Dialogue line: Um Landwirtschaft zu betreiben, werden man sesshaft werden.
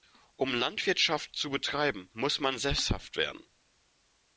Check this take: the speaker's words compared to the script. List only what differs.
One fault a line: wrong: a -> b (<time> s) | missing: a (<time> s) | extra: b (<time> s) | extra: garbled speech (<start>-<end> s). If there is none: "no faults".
wrong: werden -> muss (2.1 s)